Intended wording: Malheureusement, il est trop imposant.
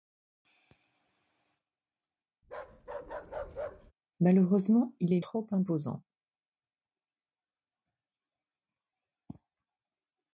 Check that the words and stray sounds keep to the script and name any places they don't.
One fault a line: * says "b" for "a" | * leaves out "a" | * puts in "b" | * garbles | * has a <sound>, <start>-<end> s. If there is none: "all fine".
* has a bark, 2.4-3.9 s